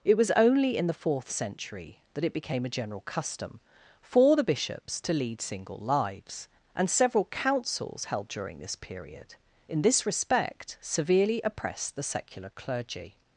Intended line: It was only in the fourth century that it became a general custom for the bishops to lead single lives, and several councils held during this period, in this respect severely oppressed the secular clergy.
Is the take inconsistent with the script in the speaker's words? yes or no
no